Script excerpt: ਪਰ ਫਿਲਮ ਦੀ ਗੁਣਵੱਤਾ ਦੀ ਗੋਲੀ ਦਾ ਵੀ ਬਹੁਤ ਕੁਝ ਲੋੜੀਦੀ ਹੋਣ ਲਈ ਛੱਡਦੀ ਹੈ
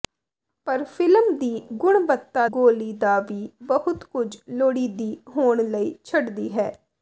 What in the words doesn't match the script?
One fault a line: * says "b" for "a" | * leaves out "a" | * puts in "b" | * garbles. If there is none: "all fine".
* leaves out "ਦੀ"